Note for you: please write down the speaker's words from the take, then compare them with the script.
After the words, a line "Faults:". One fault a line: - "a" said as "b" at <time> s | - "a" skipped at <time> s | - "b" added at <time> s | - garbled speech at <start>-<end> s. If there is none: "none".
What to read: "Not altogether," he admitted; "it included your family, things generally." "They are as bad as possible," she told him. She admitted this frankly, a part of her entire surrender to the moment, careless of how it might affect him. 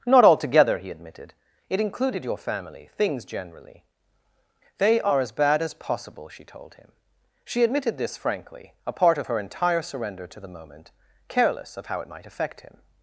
"Not altogether," he admitted; "it included your family, things generally." "They are as bad as possible," she told him. She admitted this frankly, a part of her entire surrender to the moment, careless of how it might affect him.
Faults:
none